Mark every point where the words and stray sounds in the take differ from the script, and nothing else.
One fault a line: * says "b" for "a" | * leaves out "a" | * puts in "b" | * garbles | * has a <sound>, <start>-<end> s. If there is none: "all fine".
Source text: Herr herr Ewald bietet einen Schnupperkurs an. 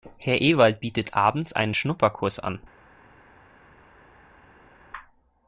* leaves out "herr"
* puts in "abends"